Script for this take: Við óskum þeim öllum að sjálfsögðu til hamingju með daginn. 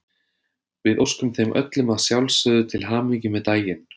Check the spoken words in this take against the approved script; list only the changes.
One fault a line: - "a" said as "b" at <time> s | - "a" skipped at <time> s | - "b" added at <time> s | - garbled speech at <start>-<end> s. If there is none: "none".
none